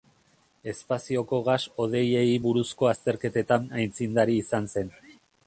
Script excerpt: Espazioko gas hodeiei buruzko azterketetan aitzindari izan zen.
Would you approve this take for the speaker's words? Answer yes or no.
yes